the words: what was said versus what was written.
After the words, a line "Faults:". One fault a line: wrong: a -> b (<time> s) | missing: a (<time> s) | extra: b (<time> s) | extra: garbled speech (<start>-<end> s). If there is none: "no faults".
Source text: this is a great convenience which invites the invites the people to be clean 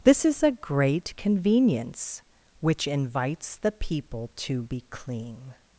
this is a great convenience which invites the people to be clean
Faults:
missing: invites the (3.7 s)